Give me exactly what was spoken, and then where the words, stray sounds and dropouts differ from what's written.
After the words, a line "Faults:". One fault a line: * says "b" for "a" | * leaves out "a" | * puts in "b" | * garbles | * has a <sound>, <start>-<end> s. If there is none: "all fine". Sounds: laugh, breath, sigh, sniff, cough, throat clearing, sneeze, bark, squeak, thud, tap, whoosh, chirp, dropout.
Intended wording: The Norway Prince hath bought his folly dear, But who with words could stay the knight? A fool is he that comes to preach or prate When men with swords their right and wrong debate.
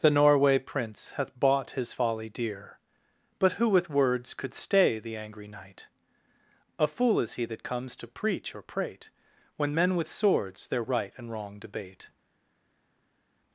The Norway Prince hath bought his folly dear, But who with words could stay the angry knight? A fool is he that comes to preach or prate When men with swords their right and wrong debate.
Faults:
* puts in "angry"